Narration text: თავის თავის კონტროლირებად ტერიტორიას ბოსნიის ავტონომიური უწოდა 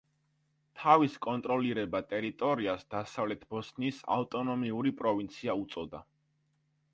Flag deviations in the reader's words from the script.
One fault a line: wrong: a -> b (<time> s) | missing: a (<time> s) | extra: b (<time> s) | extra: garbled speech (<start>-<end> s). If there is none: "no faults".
missing: თავის (1.2 s)
extra: დასავლეთ (3.0 s)
extra: პროვინცია (5.0 s)